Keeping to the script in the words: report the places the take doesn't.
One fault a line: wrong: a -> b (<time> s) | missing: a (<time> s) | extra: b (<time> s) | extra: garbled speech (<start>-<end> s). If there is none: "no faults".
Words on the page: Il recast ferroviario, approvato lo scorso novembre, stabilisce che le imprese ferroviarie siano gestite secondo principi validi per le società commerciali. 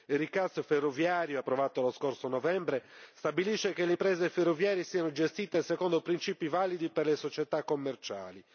no faults